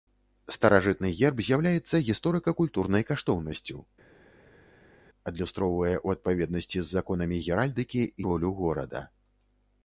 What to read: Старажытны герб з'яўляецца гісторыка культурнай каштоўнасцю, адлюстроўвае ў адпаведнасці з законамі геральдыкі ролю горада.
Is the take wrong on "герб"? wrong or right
right